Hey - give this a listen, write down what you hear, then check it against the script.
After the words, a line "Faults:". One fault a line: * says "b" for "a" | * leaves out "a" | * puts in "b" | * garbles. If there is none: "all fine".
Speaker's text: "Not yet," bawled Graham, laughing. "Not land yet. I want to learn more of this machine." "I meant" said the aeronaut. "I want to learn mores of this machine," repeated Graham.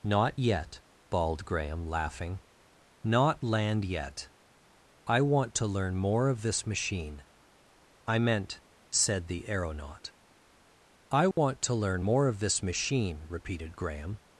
"Not yet," bawled Graham, laughing. "Not land yet. I want to learn more of this machine." "I meant" said the aeronaut. "I want to learn more of this machine," repeated Graham.
Faults:
* says "more" for "mores"